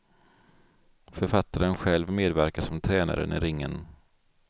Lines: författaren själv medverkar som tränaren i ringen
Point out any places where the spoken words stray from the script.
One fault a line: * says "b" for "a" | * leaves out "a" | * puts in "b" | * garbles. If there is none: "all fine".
all fine